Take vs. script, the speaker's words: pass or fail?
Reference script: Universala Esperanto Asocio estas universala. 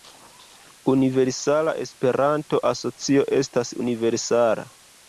pass